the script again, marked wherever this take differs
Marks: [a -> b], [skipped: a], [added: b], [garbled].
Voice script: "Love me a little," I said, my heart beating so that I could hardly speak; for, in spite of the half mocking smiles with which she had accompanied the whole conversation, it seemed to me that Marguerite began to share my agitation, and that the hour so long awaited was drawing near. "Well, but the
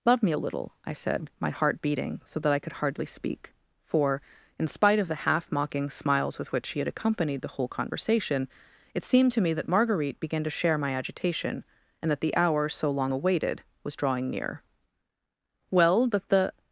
"Love me a little," I said, my heart beating so that I could hardly speak; for, in spite of the half mocking smiles with which she had accompanied the whole conversation, it seemed to me that Marguerite began to share my agitation, and that the hour so long awaited was drawing near. "Well, but the